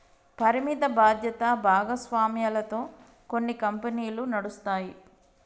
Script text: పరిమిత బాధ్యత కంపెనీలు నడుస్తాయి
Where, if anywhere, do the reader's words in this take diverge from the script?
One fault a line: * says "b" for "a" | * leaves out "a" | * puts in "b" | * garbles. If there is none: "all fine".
* puts in "భాగస్వామ్యాలతో కొన్ని"